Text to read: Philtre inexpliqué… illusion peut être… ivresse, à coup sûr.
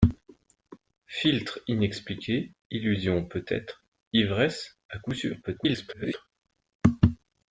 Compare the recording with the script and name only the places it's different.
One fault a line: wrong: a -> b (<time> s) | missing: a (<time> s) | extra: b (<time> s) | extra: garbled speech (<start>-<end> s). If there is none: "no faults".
extra: garbled speech (5.4-6.3 s)